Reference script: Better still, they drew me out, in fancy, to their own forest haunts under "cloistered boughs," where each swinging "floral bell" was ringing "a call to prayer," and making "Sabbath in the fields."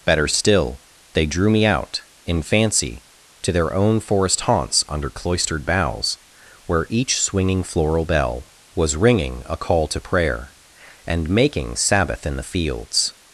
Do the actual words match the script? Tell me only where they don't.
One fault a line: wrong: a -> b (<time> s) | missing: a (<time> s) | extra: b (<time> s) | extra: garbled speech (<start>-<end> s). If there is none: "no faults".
no faults